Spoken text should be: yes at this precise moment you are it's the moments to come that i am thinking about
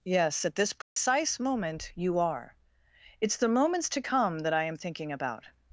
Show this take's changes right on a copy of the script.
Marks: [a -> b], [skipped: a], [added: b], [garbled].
yes at this precise moment you are it's the moments to come that i am thinking about